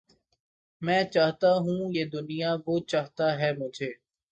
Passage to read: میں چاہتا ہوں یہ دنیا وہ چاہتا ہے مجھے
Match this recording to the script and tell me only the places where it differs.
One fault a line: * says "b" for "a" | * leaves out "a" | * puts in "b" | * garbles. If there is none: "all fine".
all fine